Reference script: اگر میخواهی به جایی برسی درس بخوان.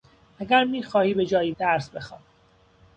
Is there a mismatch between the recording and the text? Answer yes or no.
yes